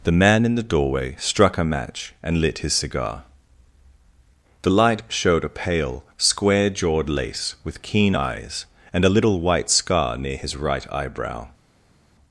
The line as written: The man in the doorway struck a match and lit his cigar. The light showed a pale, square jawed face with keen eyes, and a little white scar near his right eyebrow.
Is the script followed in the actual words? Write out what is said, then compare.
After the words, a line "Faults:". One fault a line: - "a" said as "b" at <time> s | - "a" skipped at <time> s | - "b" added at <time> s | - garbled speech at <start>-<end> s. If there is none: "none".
The man in the doorway struck a match and lit his cigar. The light showed a pale, square jawed lace with keen eyes, and a little white scar near his right eyebrow.
Faults:
- "face" said as "lace" at 7.1 s